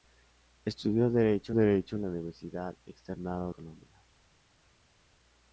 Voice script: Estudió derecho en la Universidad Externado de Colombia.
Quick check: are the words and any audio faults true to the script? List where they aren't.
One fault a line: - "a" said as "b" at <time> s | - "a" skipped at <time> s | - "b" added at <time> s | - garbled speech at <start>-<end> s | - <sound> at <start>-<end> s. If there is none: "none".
- "derecho" added at 1.5 s
- "de" skipped at 3.5 s